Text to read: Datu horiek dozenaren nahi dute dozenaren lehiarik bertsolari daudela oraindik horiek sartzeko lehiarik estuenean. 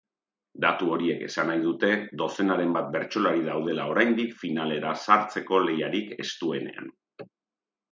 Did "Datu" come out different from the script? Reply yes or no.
no